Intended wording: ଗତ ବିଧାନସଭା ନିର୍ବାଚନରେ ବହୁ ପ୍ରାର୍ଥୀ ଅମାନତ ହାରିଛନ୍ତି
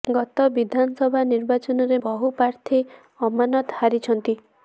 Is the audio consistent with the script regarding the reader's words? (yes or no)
yes